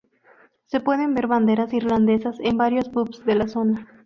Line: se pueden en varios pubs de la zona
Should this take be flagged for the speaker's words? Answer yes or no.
yes